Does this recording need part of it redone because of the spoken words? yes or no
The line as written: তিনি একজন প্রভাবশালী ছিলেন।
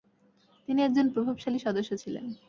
yes